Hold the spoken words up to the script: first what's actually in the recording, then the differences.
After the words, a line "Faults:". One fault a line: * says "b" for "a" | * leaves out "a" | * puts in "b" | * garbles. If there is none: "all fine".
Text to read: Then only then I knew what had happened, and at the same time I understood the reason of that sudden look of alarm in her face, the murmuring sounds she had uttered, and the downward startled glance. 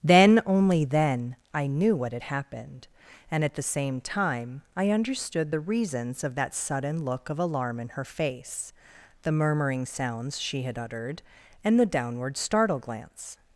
Then only then I knew what had happened, and at the same time I understood the reasons of that sudden look of alarm in her face, the murmuring sounds she had uttered, and the downward startle glance.
Faults:
* says "reasons" for "reason"
* says "startle" for "startled"